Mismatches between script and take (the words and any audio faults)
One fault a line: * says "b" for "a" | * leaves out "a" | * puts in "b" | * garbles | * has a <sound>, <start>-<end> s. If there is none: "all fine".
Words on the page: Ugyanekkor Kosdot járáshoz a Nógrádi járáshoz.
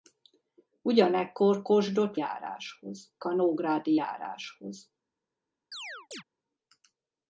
* has a chirp, 5.7-6.2 s